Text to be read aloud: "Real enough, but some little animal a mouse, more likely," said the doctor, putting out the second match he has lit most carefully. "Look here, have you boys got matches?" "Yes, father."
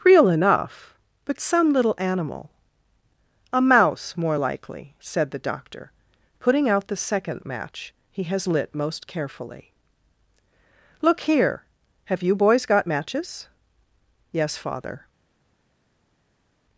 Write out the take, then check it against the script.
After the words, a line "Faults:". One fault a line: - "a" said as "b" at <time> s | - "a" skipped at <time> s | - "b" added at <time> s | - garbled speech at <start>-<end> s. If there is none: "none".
"Real enough, but some little animal a mouse, more likely," said the doctor, putting out the second match he has lit most carefully. "Look here, have you boys got matches?" "Yes, father."
Faults:
none